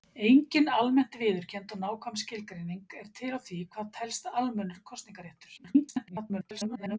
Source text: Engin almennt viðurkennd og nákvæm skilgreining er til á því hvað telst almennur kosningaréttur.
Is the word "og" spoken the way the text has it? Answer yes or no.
yes